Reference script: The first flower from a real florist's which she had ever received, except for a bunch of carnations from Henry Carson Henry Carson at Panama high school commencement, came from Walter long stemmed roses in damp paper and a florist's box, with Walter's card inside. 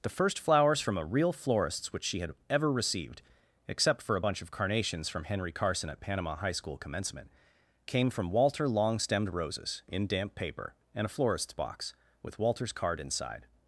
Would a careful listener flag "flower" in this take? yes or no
yes